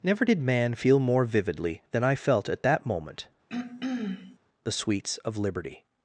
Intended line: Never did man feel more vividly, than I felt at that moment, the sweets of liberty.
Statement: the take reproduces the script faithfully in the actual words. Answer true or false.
true